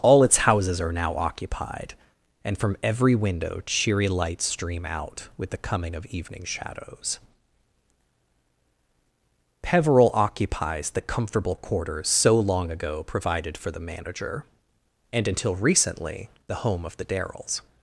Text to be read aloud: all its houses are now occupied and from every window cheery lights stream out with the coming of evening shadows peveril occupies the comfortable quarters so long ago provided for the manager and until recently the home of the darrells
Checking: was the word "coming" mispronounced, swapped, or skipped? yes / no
no